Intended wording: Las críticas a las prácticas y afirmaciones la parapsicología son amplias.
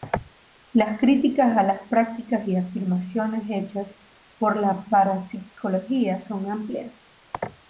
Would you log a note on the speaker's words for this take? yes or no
yes